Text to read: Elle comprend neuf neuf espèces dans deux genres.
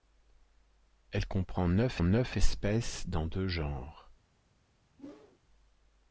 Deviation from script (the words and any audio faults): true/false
true